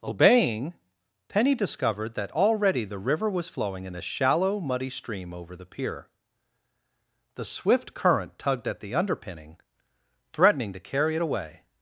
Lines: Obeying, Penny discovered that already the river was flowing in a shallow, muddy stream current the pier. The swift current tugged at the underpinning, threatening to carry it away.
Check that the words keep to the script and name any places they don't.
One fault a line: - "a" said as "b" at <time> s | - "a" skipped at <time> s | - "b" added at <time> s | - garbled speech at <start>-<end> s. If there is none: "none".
- "current" said as "over" at 5.3 s